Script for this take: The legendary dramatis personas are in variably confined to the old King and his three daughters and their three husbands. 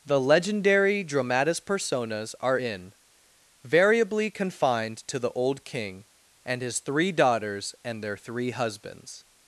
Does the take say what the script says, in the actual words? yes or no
yes